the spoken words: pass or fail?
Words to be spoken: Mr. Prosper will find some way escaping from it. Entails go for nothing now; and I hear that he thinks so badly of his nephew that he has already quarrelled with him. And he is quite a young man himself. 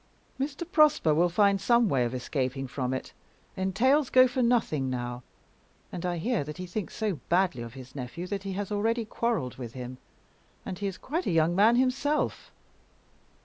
fail